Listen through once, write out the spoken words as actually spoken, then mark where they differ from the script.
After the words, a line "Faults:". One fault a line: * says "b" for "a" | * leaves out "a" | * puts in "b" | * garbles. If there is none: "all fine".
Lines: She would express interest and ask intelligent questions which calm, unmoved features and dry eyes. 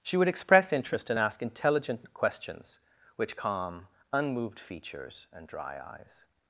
She would express interest and ask intelligent questions which calm, unmoved features and dry eyes.
Faults:
all fine